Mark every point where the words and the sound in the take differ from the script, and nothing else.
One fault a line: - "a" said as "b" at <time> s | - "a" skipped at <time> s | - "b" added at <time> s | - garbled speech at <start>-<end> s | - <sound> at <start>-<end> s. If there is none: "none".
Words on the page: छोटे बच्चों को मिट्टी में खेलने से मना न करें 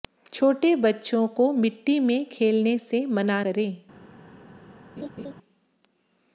- "न" skipped at 3.4 s
- laugh at 5.0-5.3 s